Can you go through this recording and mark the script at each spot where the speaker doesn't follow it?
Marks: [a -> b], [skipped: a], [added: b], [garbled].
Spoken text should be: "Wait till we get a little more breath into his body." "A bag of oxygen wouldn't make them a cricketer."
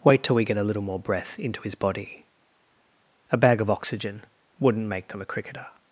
"Wait till we get a little more breath into his body." "A bag of oxygen wouldn't make them a cricketer."